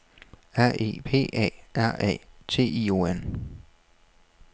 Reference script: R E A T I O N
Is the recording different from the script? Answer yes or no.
yes